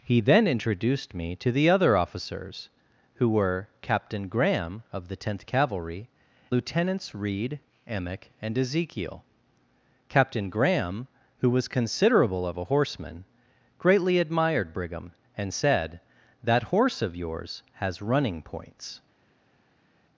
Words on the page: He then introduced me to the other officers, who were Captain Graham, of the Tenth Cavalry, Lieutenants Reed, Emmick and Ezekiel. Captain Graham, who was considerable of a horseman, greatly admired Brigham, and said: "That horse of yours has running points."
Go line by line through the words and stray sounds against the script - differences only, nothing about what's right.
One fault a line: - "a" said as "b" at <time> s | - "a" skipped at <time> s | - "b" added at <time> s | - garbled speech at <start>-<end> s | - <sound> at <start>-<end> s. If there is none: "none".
none